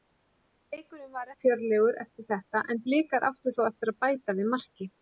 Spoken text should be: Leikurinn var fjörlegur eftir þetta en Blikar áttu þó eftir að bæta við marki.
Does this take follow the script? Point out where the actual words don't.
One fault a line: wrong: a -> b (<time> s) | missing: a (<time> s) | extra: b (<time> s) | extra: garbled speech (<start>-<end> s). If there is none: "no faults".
no faults